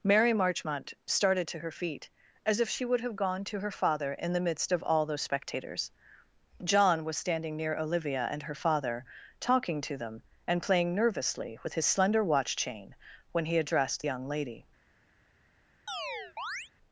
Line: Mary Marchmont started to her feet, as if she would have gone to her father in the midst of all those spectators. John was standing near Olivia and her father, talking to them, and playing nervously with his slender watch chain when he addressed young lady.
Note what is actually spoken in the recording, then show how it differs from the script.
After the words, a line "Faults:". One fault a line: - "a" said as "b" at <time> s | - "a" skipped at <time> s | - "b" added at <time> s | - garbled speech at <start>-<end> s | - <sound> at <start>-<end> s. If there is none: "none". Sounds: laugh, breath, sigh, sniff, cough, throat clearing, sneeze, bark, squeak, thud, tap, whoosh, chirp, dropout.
Mary Marchmont started to her feet, as if she would have gone to her father in the midst of all those spectators. John was standing near Olivia and her father, talking to them, and playing nervously with his slender watch chain when he addressed young lady.
Faults:
- chirp at 15.9-16.7 s